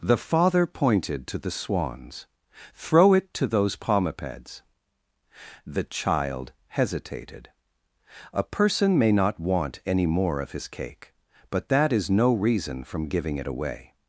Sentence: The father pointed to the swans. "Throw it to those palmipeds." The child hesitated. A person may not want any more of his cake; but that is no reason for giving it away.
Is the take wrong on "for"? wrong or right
wrong